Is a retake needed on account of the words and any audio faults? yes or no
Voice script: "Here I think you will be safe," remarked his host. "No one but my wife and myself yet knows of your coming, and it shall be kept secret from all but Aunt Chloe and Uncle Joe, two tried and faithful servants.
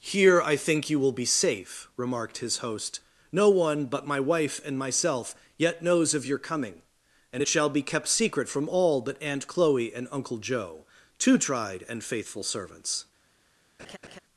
yes